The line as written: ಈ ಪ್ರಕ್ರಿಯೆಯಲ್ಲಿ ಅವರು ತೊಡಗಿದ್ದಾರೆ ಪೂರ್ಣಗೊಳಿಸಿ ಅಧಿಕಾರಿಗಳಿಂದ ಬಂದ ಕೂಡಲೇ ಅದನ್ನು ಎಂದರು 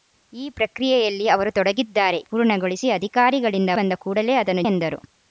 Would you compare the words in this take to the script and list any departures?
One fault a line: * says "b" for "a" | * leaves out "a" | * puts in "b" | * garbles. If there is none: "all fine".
all fine